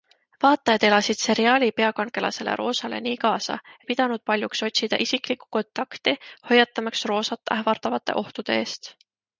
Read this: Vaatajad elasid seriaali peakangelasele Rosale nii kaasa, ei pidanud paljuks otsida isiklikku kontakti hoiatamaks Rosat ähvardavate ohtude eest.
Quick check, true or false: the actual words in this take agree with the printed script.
true